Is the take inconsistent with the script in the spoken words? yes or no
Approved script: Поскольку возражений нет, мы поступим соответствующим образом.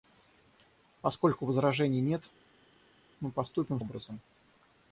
yes